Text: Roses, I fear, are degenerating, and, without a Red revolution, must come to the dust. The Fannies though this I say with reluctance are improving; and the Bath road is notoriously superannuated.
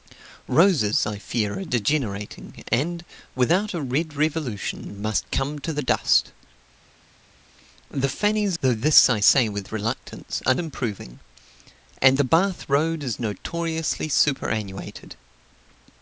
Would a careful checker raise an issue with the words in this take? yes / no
no